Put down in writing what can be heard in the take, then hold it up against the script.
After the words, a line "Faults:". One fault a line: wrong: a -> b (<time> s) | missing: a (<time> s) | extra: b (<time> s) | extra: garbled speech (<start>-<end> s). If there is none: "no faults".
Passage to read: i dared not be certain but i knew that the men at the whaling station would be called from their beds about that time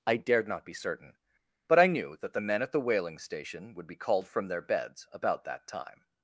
i dared not be certain but i knew that the men at the whaling station would be called from their beds about that time
Faults:
no faults